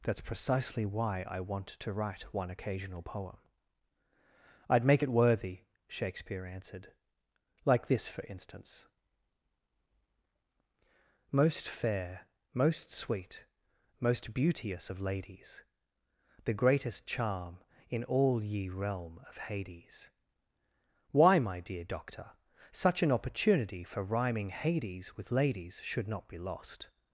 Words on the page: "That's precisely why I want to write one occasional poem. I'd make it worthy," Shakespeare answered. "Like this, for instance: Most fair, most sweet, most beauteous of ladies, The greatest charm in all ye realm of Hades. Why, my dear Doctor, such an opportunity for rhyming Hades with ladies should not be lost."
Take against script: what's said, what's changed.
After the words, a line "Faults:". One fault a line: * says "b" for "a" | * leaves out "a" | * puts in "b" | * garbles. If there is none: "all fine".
"That's precisely why I want to write one occasional poem. I'd make it worthy," Shakespeare answered. "Like this, for instance: Most fair, most sweet, most beauteous of ladies, The greatest charm in all ye realm of Hades. Why, my dear Doctor, such an opportunity for rhyming Hades with ladies should not be lost."
Faults:
all fine